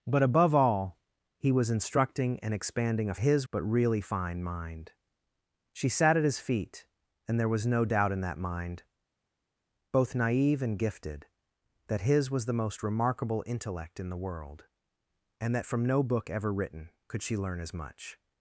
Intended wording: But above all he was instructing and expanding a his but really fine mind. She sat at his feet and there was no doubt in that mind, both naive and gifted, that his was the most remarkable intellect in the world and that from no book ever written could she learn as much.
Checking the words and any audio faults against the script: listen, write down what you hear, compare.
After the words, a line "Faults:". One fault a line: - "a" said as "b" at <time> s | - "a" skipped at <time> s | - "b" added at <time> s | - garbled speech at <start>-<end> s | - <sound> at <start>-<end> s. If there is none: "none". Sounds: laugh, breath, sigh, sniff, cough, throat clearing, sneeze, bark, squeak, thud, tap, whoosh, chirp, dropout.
But above all he was instructing and expanding a his but really fine mind. She sat at his feet and there was no doubt in that mind, both naive and gifted, that his was the most remarkable intellect in the world and that from no book ever written could she learn as much.
Faults:
none